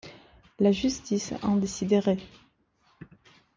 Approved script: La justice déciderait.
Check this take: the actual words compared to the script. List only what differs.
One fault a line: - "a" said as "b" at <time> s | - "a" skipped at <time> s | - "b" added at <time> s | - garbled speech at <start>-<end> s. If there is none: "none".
- "en" added at 1.4 s